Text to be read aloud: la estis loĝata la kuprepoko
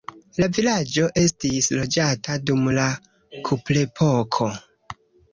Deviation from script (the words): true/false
true